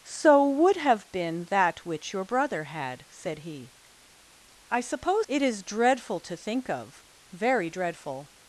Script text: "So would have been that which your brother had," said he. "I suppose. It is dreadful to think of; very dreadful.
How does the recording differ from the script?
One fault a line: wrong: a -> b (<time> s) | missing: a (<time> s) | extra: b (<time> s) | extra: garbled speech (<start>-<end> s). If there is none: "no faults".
no faults